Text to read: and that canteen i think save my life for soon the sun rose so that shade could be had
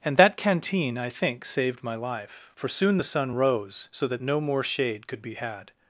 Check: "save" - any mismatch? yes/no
yes